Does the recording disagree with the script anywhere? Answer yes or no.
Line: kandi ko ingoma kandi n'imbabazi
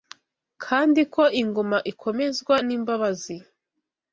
yes